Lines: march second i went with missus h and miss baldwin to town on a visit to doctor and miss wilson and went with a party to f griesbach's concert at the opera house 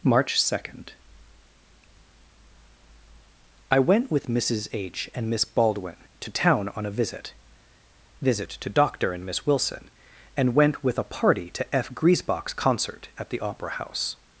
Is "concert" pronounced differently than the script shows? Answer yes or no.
no